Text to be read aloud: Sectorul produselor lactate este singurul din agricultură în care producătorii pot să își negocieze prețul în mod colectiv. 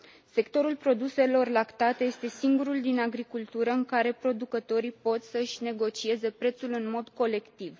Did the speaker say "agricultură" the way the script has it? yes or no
yes